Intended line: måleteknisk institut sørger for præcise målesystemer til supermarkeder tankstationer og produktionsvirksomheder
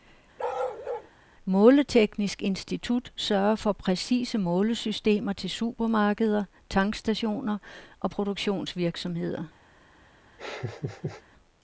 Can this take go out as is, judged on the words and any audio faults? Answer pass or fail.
fail